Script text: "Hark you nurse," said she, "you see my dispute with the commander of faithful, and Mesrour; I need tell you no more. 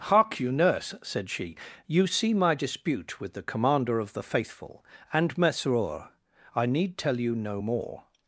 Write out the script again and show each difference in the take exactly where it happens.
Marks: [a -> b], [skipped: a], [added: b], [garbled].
"Hark you nurse," said she, "you see my dispute with the commander of [added: the] faithful, and Mesrour; I need tell you no more.